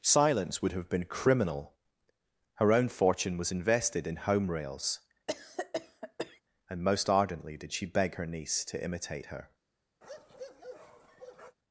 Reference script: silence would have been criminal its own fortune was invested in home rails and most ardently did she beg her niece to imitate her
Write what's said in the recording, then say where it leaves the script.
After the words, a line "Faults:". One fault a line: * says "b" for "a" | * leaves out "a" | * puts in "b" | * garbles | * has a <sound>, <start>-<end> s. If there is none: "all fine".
silence would have been criminal her own fortune was invested in home rails and most ardently did she beg her niece to imitate her
Faults:
* says "her" for "its"
* has a cough, 5.3-6.4 s
* has a bark, 10.0-11.6 s